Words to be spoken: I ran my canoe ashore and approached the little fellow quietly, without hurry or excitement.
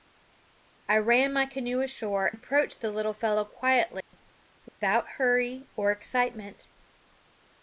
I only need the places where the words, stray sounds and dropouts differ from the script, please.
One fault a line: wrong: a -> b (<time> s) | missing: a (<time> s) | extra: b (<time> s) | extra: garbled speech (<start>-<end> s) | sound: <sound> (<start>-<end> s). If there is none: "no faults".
missing: and (2.3 s)
sound: dropout (4.0-4.1 s)
sound: dropout (4.7-4.8 s)